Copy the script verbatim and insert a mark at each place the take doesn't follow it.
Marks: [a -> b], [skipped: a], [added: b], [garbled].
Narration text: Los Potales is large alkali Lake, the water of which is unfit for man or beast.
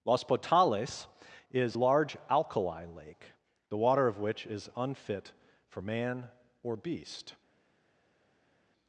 Los Potales is large alkali Lake, the water of which is unfit for man or beast.